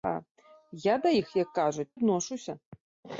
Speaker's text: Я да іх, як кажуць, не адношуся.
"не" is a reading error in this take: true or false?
true